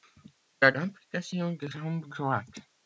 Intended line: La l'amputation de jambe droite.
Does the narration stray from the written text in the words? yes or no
no